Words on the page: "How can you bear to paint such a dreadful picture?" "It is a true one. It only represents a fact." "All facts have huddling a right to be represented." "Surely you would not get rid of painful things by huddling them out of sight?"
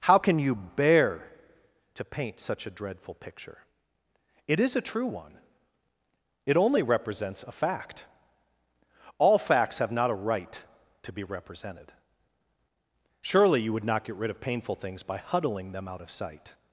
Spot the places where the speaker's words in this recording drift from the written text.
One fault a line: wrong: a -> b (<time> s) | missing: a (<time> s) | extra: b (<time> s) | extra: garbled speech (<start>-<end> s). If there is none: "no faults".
wrong: huddling -> not (9.9 s)